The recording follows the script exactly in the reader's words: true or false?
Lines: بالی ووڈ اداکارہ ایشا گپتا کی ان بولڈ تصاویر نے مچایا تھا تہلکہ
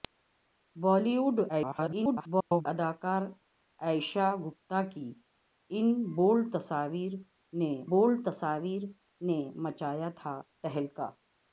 false